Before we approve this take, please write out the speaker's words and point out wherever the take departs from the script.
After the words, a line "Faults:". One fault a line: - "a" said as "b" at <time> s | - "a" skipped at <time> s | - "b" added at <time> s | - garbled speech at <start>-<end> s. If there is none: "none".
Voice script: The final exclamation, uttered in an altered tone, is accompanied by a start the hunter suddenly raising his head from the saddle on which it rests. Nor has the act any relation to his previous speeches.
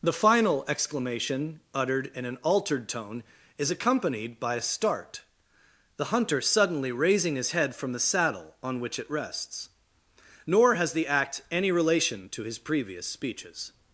The final exclamation, uttered in an altered tone, is accompanied by a start the hunter suddenly raising his head from the saddle on which it rests. Nor has the act any relation to his previous speeches.
Faults:
none